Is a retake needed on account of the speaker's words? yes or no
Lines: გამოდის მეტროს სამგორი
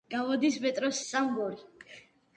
no